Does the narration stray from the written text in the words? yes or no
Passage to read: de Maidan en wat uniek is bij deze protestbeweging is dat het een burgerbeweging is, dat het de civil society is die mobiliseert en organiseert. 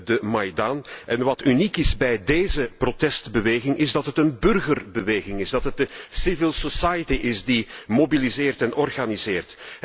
no